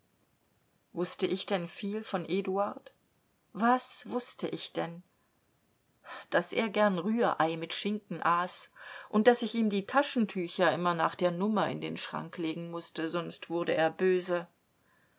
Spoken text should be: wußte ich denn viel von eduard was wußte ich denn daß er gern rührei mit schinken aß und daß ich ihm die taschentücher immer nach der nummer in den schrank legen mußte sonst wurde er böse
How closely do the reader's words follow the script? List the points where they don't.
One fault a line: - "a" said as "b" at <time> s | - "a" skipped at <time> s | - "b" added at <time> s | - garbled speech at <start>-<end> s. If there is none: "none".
none